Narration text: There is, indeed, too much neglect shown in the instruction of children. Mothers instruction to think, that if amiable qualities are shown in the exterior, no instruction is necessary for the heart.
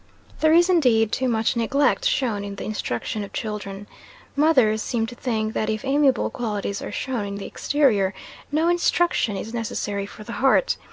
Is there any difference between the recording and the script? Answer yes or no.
yes